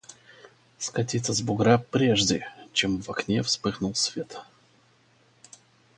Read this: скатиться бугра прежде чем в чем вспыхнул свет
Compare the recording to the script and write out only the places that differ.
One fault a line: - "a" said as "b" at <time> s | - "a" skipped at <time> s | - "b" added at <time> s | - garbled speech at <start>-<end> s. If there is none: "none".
- "с" added at 1.3 s
- "чем" said as "окне" at 3.1 s